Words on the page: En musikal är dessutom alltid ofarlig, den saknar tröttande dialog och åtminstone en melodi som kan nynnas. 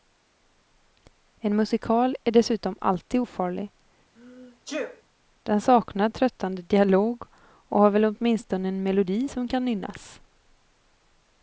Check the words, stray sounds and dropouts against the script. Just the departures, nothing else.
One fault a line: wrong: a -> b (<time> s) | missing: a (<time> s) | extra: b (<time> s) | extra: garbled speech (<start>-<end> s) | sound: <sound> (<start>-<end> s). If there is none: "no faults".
sound: sneeze (4.2-5.0 s)
extra: har väl (7.8 s)